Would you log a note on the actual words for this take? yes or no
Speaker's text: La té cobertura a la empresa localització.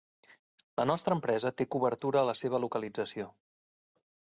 yes